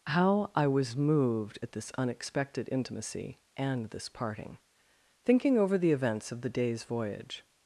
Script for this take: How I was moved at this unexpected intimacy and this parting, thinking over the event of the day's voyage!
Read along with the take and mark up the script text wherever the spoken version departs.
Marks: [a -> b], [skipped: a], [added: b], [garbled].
How I was moved at this unexpected intimacy and this parting, thinking over the [event -> events] of the day's voyage!